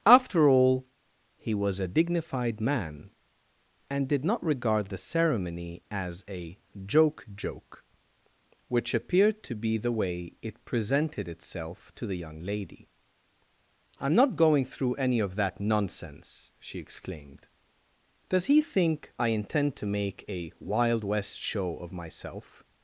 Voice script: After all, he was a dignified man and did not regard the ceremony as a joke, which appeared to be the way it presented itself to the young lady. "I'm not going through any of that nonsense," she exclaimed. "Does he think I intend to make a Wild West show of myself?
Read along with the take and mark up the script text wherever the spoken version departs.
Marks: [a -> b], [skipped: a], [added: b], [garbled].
After all, he was a dignified man and did not regard the ceremony as a joke, [added: joke] which appeared to be the way it presented itself to the young lady. "I'm not going through any of that nonsense," she exclaimed. "Does he think I intend to make a Wild West show of myself?